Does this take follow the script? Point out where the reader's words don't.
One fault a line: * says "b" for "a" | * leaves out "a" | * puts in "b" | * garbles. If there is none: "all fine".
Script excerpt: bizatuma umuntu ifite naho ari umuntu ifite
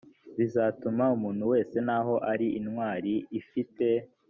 * says "wese" for "ifite"
* says "intwari" for "umuntu"